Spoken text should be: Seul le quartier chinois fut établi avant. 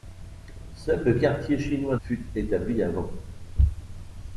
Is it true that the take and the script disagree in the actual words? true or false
false